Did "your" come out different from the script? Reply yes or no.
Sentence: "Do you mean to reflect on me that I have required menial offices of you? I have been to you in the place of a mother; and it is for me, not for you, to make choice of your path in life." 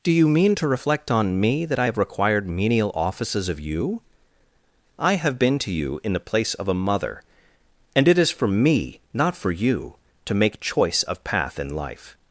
yes